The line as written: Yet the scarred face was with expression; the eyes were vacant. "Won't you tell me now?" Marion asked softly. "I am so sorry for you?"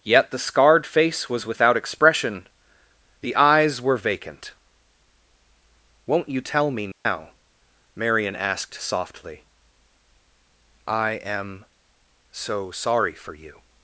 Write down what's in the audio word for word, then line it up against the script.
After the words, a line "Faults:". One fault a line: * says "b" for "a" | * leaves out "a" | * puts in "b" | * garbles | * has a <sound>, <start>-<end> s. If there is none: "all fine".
Yet the scarred face was without expression; the eyes were vacant. "Won't you tell me now?" Marion asked softly. "I am so sorry for you?"
Faults:
* says "without" for "with"
* has a dropout, 6.9-7.1 s